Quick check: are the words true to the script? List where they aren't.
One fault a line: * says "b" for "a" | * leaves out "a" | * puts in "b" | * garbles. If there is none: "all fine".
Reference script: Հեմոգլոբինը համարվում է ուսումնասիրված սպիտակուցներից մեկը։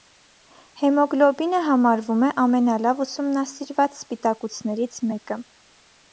* puts in "ամենալավ"